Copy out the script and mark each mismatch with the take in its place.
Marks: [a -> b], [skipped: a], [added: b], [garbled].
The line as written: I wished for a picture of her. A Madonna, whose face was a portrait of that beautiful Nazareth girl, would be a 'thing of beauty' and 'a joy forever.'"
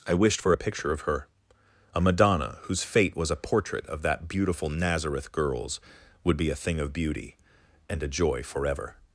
I wished for a picture of her. A Madonna, whose [face -> fate] was a portrait of that beautiful Nazareth [girl, -> girls] would be a 'thing of beauty' and 'a joy forever.'"